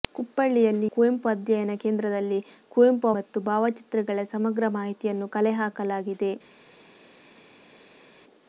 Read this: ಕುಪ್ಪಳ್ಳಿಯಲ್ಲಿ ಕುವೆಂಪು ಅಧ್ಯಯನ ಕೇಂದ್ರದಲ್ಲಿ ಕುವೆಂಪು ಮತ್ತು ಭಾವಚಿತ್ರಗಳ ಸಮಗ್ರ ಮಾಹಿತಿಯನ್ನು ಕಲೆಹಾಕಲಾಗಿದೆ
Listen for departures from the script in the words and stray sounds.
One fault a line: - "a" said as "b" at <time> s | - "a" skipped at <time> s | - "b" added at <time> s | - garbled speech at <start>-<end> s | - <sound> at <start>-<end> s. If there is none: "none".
none